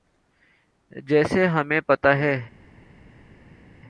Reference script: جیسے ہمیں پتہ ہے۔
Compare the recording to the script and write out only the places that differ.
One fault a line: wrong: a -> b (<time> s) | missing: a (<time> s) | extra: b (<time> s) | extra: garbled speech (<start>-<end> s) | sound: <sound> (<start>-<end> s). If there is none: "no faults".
no faults